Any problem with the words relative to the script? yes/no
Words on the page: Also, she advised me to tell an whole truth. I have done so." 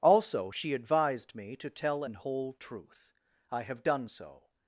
no